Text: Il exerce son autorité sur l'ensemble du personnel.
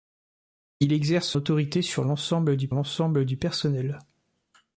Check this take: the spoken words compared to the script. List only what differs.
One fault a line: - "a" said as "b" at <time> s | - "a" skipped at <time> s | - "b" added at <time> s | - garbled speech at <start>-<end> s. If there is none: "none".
- "son" skipped at 1.4 s
- "l'ensemble du" added at 2.7 s